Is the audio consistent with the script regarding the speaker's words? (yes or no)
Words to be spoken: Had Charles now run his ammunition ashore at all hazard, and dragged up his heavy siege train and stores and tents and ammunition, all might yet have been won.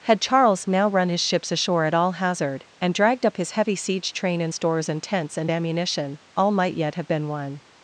no